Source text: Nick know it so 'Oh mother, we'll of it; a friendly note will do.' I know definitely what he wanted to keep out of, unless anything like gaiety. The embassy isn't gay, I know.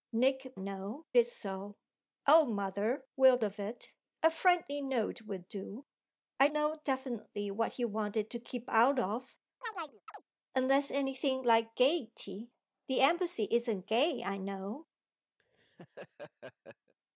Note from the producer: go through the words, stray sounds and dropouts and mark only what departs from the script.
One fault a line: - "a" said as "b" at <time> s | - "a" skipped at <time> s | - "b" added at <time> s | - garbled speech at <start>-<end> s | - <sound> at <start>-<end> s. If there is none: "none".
- chirp at 9.6-10.2 s
- laugh at 15.4-16.9 s